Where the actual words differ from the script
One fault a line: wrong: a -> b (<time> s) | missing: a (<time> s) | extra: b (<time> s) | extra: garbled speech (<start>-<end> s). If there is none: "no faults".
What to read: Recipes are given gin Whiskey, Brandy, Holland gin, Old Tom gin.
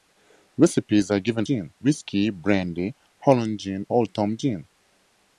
no faults